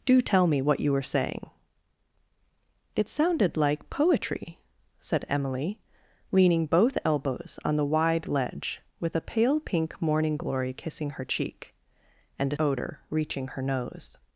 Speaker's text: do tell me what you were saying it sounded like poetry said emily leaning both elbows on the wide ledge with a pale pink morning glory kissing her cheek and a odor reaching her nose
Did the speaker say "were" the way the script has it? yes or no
yes